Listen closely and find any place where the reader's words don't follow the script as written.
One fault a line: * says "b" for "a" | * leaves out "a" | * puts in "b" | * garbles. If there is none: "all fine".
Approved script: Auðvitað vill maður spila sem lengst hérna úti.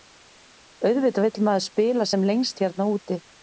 all fine